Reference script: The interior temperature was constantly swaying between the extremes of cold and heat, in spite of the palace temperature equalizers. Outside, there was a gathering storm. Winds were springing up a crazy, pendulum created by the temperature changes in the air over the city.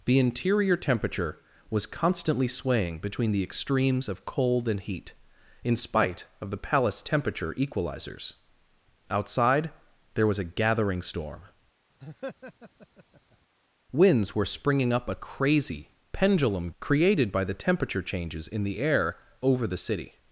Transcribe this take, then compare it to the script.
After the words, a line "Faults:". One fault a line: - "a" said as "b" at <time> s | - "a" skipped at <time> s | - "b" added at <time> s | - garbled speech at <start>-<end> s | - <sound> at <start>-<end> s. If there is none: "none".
The interior temperature was constantly swaying between the extremes of cold and heat, in spite of the palace temperature equalizers. Outside, there was a gathering storm. Winds were springing up a crazy, pendulum created by the temperature changes in the air over the city.
Faults:
- laugh at 12.0-13.4 s